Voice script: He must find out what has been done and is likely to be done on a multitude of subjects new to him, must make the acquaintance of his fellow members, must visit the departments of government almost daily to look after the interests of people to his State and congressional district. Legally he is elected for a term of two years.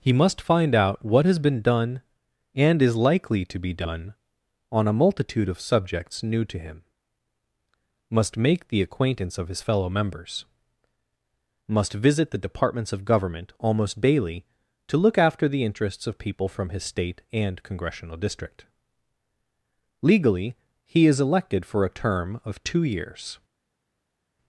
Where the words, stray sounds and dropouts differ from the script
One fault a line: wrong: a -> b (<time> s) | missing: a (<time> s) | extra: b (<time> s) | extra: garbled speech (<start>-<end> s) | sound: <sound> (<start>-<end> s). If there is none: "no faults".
wrong: to -> from (16.5 s)